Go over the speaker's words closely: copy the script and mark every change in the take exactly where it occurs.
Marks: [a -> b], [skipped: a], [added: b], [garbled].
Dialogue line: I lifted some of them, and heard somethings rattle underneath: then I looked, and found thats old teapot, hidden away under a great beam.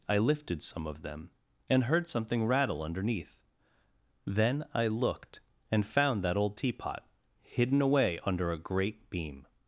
I lifted some of them, and heard [somethings -> something] rattle underneath: then I looked, and found [thats -> that] old teapot, hidden away under a great beam.